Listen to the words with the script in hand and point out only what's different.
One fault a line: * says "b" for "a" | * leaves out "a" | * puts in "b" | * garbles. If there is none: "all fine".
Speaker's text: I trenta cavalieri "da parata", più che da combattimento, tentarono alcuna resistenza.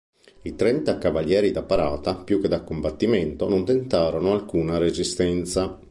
* puts in "non"